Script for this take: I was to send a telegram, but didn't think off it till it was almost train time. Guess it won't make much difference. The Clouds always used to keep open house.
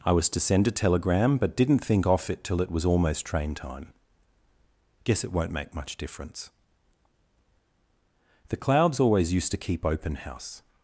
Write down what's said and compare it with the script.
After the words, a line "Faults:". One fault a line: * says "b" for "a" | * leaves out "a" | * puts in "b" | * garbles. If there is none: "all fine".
I was to send a telegram, but didn't think off it till it was almost train time. Guess it won't make much difference. The Clouds always used to keep open house.
Faults:
all fine